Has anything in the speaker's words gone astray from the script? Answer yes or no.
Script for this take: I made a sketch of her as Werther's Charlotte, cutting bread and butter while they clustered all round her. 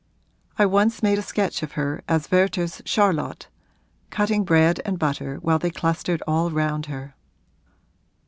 yes